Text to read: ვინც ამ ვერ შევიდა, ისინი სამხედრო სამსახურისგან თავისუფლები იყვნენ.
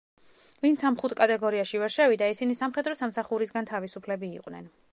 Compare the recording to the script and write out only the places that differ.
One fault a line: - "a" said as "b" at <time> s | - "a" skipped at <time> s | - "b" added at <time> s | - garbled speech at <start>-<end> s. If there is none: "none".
- "ხუთ კატეგორიაში" added at 1.0 s